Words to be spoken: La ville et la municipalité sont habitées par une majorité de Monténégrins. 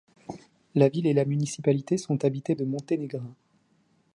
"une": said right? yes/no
no